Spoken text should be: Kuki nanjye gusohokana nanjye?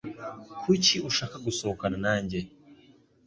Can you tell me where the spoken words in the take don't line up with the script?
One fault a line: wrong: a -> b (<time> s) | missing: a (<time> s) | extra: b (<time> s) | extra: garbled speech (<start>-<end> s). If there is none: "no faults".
wrong: nanjye -> ushaka (1.1 s)